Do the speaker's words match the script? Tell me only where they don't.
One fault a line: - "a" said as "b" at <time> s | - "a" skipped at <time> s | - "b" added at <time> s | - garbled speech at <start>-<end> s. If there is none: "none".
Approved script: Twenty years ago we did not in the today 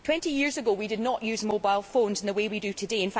- "use mobile phones" added at 1.2 s
- "way we do" added at 2.3 s